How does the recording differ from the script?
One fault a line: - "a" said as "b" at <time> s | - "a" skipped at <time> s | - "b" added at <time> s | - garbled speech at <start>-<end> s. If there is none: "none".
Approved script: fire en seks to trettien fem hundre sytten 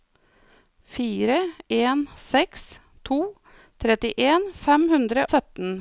none